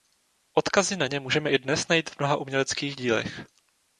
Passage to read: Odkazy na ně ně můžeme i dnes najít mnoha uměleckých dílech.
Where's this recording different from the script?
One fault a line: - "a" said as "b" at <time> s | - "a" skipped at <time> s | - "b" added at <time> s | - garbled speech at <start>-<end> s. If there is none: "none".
- "ně" skipped at 1.2 s
- "v" added at 2.1 s